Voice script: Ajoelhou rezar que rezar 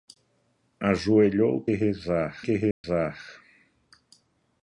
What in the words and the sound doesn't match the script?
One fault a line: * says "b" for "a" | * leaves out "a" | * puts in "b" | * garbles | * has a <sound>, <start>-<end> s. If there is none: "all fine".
* has a dropout, 2.7-2.8 s